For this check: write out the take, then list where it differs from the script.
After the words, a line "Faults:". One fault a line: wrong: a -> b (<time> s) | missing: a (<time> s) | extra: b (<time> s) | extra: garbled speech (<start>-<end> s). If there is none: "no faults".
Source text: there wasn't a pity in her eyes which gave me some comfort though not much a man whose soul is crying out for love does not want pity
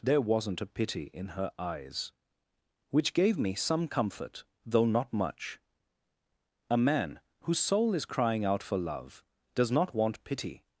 there wasn't a pity in her eyes which gave me some comfort though not much a man whose soul is crying out for love does not want pity
Faults:
no faults